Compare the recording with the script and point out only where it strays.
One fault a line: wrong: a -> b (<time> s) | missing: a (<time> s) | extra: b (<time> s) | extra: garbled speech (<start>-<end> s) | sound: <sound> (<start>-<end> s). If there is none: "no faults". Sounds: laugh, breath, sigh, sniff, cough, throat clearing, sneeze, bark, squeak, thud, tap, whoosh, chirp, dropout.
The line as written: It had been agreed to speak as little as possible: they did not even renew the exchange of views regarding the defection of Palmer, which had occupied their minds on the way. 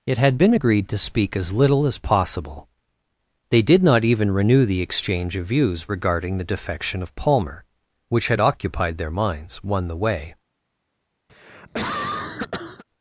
wrong: on -> one (9.6 s)
sound: cough (11.3-12.8 s)